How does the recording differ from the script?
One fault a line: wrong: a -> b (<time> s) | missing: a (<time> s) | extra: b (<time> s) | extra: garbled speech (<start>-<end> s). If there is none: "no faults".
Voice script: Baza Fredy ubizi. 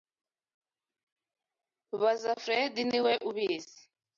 extra: niwe (2.9 s)